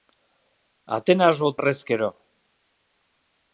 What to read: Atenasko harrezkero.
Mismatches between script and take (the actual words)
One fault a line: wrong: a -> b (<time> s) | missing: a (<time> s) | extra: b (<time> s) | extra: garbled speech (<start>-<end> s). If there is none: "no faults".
no faults